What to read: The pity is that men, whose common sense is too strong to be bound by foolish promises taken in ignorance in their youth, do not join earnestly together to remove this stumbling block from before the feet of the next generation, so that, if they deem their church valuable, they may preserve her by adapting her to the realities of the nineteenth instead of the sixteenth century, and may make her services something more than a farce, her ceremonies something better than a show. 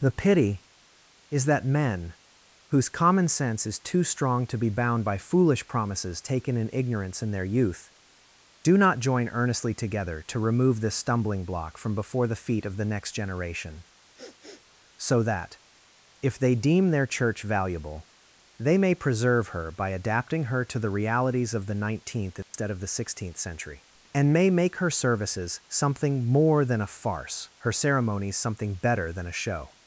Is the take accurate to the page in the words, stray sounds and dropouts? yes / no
no